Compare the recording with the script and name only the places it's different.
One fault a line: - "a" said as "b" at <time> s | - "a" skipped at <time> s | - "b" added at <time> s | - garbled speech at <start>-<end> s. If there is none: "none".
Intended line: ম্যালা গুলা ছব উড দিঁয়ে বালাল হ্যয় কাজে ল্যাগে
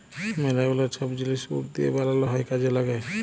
- "জিলিস" added at 1.2 s